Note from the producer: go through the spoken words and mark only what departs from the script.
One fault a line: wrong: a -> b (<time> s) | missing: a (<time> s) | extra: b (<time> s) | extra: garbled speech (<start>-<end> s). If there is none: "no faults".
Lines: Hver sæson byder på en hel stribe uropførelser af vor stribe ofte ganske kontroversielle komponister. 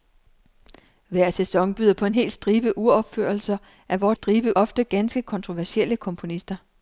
no faults